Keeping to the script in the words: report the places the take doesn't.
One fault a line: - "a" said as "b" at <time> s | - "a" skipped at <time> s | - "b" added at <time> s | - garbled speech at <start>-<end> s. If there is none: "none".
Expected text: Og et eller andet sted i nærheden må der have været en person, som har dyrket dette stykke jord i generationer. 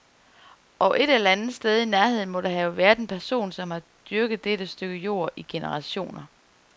none